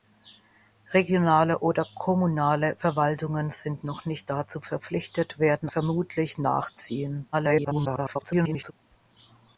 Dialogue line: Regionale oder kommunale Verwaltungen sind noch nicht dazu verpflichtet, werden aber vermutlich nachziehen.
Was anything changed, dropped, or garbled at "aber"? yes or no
yes